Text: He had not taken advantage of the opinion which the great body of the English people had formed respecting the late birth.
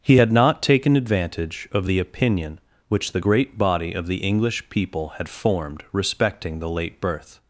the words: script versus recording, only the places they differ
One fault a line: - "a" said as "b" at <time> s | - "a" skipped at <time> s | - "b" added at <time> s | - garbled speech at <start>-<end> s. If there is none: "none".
none